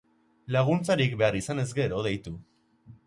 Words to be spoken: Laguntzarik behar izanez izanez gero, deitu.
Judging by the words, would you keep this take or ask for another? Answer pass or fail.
fail